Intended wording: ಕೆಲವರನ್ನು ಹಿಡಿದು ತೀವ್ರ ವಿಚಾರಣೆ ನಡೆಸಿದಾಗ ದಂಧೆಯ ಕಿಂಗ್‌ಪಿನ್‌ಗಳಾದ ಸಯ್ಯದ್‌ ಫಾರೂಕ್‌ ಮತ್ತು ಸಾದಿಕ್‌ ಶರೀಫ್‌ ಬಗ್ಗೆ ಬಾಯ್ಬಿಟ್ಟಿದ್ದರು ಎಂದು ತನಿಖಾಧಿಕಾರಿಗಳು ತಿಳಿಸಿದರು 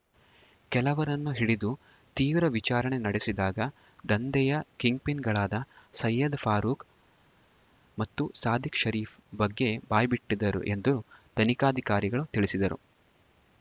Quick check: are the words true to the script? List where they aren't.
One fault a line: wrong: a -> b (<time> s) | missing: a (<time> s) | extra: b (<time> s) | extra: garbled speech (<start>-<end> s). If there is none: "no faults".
no faults